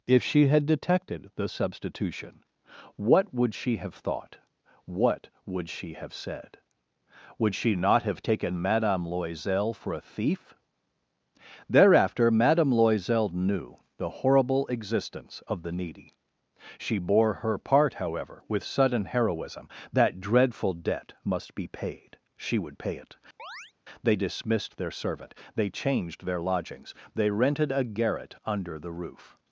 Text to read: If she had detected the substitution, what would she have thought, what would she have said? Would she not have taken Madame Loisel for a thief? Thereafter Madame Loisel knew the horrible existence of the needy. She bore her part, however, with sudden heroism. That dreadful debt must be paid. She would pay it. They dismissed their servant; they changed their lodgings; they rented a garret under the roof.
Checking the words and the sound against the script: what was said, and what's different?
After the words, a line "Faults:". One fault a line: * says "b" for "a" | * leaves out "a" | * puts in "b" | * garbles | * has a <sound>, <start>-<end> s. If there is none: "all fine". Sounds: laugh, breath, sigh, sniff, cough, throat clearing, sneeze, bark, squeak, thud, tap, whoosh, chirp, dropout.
If she had detected the substitution, what would she have thought, what would she have said? Would she not have taken Madame Loisel for a thief? Thereafter Madame Loisel knew the horrible existence of the needy. She bore her part, however, with sudden heroism. That dreadful debt must be paid. She would pay it. They dismissed their servant; they changed their lodgings; they rented a garret under the roof.
Faults:
* has a chirp, 23.4-23.7 s